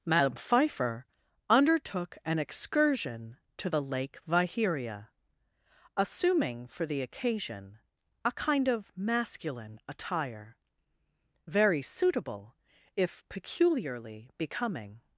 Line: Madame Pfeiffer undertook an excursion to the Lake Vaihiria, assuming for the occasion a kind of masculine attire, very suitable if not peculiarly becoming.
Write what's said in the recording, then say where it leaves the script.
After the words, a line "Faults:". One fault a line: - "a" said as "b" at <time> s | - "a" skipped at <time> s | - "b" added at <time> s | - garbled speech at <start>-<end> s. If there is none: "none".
Madame Pfeiffer undertook an excursion to the Lake Vaihiria, assuming for the occasion a kind of masculine attire, very suitable if peculiarly becoming.
Faults:
- "not" skipped at 13.2 s